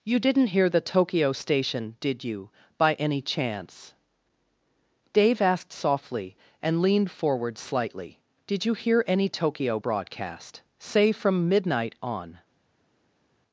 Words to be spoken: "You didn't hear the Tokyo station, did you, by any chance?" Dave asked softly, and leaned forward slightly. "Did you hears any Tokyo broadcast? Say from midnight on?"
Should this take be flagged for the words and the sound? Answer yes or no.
yes